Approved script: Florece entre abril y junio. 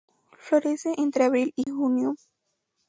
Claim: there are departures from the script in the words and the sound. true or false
true